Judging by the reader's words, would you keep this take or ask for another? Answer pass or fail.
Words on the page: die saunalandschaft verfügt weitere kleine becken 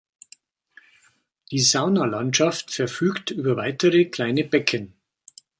fail